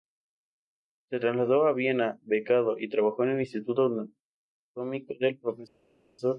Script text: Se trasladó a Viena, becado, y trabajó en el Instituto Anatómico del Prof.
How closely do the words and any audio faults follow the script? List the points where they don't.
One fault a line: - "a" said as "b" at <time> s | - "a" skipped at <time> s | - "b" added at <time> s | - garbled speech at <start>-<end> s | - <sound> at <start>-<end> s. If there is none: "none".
none